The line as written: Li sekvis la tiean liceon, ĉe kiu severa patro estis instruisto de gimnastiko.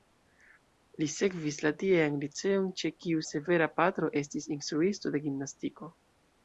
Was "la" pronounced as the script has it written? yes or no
yes